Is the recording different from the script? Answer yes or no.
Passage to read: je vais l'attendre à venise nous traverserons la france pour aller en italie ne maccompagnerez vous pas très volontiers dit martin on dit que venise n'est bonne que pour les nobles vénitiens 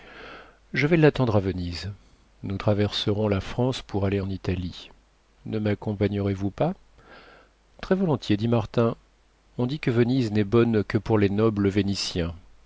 no